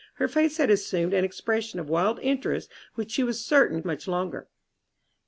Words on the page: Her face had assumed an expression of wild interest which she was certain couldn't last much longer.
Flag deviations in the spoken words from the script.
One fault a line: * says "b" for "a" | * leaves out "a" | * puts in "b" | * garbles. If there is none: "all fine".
* leaves out "couldn't last"